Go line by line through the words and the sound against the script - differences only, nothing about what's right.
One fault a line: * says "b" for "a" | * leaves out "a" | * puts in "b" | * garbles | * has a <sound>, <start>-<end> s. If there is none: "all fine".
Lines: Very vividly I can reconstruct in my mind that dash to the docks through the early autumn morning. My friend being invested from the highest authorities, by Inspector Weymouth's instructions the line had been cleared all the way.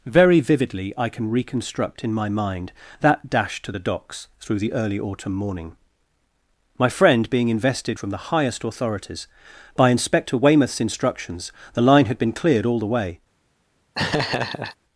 * has a laugh, 13.9-14.8 s